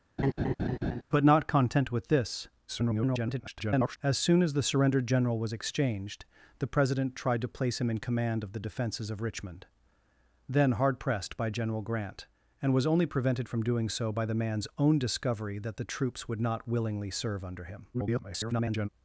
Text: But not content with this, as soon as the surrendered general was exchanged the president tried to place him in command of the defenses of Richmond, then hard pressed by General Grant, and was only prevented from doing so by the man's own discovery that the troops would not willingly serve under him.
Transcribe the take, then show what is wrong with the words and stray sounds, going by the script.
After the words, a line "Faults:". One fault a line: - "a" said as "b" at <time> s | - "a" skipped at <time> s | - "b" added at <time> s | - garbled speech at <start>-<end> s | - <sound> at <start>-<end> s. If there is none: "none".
But not content with this, [garbled] as soon as the surrendered general was exchanged the president tried to place him in command of the defenses of Richmond, then hard pressed by General Grant, and was only prevented from doing so by the man's own discovery that the troops would not willingly serve under him. [garbled]
Faults:
- laugh at 0.2-1.0 s
- garbled speech at 2.7-4.0 s
- garbled speech at 17.9-18.9 s